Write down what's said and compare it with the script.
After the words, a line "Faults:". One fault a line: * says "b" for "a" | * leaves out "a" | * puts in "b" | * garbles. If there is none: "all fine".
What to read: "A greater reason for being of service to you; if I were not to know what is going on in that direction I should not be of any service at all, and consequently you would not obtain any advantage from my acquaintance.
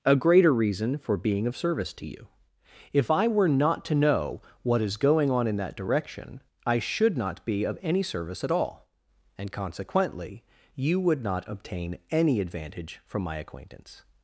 "A greater reason for being of service to you; if I were not to know what is going on in that direction I should not be of any service at all, and consequently you would not obtain any advantage from my acquaintance.
Faults:
all fine